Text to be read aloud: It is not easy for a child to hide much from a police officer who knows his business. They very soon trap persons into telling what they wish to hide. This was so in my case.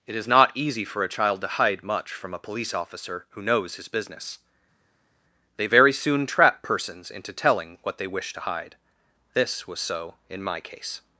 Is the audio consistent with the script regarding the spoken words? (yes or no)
yes